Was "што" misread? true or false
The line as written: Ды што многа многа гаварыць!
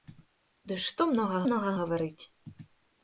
false